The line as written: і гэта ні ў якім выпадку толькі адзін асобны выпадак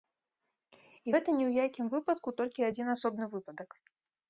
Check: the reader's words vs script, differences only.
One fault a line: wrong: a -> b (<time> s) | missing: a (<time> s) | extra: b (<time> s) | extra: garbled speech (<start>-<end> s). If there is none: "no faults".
no faults